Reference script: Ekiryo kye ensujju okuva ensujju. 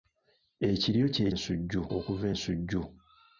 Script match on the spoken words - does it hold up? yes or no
yes